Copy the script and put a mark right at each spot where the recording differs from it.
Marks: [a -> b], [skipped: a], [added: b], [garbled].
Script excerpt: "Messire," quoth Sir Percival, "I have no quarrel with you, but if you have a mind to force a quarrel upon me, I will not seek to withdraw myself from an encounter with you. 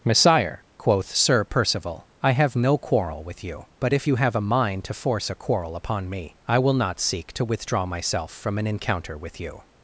"Messire," quoth Sir Percival, "I have no quarrel with you, but if you have a mind to force a quarrel upon me, I will not seek to withdraw myself from an encounter with you.